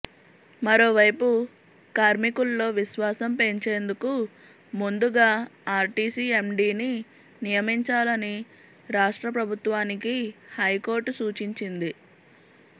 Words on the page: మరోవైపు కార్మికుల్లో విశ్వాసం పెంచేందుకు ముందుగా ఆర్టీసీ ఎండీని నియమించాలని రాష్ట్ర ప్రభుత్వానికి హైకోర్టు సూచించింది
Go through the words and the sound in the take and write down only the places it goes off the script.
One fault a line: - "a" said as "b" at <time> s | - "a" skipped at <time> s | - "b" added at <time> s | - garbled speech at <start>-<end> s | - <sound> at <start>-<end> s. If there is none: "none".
none